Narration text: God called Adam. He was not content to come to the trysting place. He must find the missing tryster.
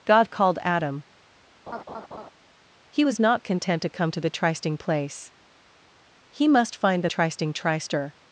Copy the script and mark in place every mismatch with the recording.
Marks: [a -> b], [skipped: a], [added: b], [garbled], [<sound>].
God called Adam. [laugh] He was not content to come to the trysting place. He must find the [missing -> trysting] tryster.